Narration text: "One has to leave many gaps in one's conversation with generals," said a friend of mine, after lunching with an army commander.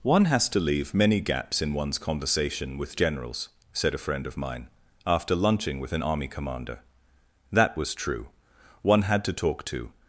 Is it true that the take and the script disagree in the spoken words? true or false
true